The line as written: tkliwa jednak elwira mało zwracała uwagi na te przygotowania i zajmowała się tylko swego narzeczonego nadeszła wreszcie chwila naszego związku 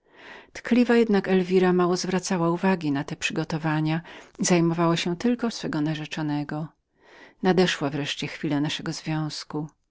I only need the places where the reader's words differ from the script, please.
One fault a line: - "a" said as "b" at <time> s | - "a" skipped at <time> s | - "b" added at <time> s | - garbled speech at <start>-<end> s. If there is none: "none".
none